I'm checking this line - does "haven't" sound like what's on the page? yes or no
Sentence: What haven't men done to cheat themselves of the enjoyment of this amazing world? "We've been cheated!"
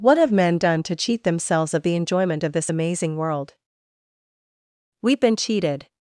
no